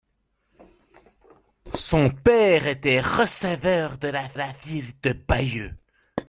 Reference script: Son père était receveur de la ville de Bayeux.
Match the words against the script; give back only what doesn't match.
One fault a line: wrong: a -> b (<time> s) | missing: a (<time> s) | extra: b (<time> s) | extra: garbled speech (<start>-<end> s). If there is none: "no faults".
extra: la (4.3 s)